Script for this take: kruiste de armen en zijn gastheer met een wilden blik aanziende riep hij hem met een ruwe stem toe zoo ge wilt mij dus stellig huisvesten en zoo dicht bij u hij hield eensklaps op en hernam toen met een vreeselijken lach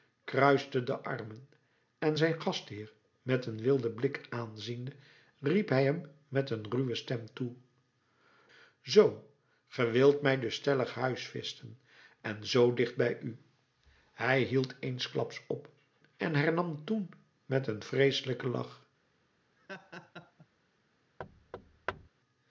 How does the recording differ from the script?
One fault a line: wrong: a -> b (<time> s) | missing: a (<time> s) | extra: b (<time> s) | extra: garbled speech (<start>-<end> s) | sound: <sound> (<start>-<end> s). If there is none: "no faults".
sound: laugh (19.6-20.5 s)
sound: thud (21.2-22.1 s)